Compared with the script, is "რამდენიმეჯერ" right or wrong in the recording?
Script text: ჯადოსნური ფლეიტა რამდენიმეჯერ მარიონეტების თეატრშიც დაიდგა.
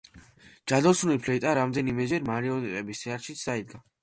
right